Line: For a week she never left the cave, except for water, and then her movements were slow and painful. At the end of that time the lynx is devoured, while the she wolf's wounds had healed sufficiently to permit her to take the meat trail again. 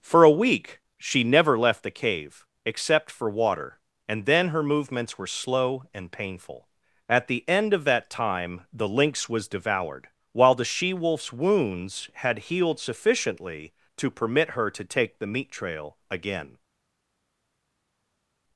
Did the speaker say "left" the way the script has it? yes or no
yes